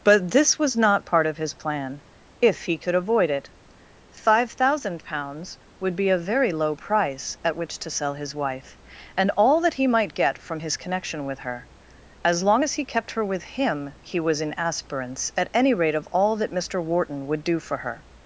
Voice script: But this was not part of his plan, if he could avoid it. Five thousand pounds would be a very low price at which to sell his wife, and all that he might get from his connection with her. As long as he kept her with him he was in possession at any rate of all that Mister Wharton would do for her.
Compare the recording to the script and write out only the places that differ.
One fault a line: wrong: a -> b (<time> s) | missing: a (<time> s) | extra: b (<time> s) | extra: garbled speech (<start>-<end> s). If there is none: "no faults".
wrong: possession -> aspirants (14.6 s)